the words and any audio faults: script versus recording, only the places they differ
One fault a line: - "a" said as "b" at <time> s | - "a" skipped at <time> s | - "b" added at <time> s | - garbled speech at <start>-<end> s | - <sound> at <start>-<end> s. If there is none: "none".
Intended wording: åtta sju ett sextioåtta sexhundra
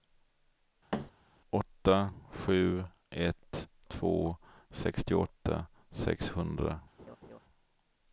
- thud at 0.9-1.1 s
- "två" added at 3.9 s
- laugh at 7.0-7.4 s